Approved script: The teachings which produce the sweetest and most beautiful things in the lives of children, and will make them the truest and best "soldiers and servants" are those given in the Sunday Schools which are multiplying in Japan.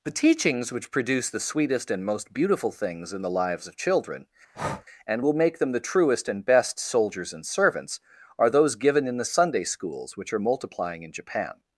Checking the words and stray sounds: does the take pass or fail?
fail